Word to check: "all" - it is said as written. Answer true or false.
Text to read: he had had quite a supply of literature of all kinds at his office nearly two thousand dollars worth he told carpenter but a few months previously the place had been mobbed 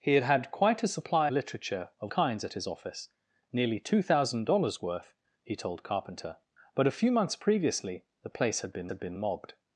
false